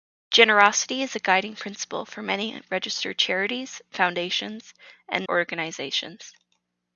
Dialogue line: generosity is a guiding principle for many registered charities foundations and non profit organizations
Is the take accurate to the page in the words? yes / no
no